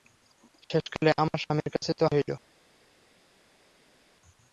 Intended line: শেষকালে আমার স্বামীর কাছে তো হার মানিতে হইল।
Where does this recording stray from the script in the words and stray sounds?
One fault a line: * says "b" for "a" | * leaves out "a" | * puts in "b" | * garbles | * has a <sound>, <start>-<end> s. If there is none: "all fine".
* leaves out "হার মানিতে"